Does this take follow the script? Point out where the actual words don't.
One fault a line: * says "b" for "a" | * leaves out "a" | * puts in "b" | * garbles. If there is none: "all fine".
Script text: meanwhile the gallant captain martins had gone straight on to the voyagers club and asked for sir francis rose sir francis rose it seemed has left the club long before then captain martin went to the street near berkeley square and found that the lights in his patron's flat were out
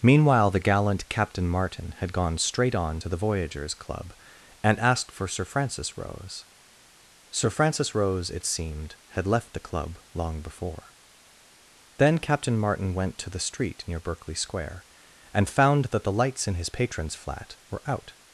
* says "martin" for "martins"
* says "had" for "has"